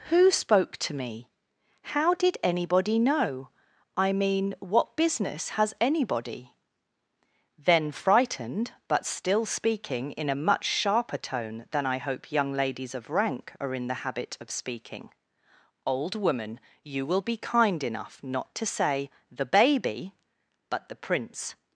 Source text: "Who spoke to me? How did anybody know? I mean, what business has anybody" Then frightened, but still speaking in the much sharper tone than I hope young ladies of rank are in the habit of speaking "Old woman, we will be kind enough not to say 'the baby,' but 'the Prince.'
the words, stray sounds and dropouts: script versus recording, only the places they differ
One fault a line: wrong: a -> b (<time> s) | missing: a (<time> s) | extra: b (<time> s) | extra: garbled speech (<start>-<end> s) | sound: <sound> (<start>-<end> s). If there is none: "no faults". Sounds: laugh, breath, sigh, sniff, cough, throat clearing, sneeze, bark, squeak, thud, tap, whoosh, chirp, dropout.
wrong: the -> a (10.3 s)
wrong: we -> you (16.8 s)